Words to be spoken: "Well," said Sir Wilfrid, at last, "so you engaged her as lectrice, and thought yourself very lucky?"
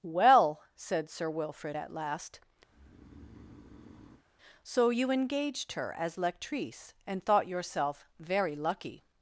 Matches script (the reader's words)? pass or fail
pass